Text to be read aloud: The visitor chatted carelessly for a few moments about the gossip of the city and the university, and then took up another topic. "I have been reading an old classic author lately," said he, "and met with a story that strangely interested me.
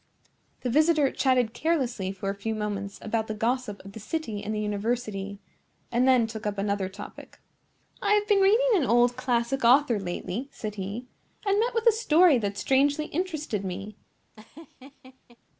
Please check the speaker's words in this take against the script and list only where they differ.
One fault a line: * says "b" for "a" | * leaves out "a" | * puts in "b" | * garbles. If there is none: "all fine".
all fine